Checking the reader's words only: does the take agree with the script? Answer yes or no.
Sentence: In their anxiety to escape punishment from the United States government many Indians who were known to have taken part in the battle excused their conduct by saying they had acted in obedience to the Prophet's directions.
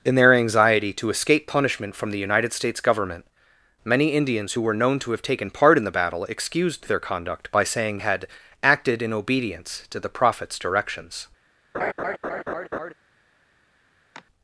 no